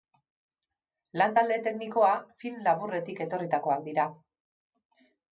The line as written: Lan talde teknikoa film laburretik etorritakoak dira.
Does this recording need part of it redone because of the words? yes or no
no